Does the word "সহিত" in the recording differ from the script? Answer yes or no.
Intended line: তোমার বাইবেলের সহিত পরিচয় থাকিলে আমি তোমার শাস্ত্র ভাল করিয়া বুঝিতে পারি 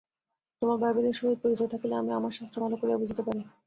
no